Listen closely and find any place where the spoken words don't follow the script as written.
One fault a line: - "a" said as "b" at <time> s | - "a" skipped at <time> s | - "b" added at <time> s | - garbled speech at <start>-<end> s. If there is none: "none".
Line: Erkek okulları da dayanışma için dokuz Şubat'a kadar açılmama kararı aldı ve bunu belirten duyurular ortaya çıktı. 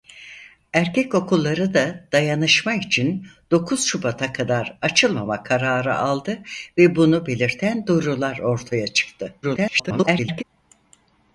- garbled speech at 9.4-10.4 s